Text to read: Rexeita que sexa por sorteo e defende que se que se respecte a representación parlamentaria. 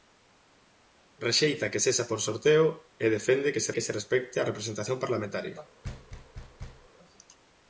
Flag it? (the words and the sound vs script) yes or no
yes